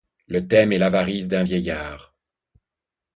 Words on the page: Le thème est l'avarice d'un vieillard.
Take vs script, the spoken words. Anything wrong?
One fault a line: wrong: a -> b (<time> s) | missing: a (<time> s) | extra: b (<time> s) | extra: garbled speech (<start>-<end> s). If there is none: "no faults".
no faults